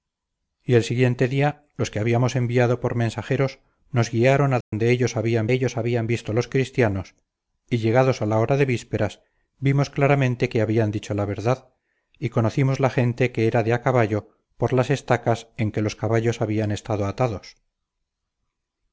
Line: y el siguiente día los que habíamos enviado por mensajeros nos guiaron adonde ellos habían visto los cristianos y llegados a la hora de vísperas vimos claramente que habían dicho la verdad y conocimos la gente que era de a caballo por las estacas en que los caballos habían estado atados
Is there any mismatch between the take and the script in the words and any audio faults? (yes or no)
yes